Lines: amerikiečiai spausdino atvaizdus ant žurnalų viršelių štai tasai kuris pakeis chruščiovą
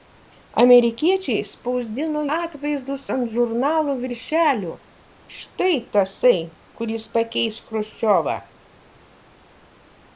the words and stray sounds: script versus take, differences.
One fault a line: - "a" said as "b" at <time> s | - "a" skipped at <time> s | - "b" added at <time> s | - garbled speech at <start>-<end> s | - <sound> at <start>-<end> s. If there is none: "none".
none